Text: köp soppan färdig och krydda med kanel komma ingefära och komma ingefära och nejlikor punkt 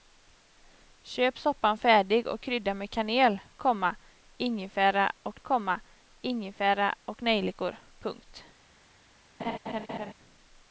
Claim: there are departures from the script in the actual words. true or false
false